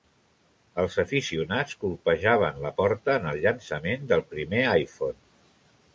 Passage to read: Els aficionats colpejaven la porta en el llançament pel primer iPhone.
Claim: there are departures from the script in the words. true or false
true